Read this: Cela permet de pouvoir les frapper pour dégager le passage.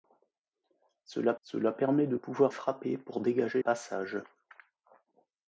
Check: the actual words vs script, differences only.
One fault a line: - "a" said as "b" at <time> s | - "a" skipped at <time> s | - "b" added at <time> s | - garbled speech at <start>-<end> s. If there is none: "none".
- "cela" added at 1.4 s
- "les" skipped at 2.5 s
- "le" skipped at 3.6 s